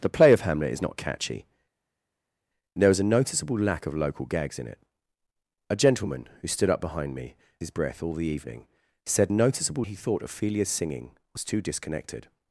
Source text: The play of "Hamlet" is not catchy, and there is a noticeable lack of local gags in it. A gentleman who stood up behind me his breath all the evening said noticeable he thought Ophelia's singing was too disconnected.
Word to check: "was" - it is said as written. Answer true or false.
true